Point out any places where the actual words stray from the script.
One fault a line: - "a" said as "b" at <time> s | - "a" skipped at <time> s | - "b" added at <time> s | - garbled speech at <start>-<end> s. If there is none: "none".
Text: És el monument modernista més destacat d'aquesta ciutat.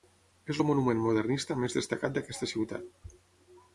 none